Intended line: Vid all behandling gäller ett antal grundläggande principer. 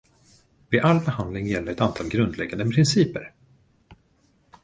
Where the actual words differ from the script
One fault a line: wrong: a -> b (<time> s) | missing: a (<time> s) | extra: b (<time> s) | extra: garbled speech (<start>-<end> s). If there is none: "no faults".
no faults